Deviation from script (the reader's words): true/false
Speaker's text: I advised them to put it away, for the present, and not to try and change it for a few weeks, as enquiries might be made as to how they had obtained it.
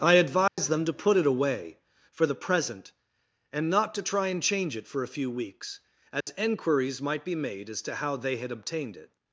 false